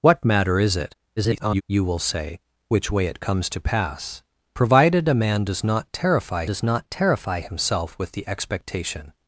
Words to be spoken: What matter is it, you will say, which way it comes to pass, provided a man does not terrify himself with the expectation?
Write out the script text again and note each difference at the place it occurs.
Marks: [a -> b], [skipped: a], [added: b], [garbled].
What matter is it, [garbled] you will say, which way it comes to pass, provided a man does not terrify [added: does not terrify] himself with the expectation?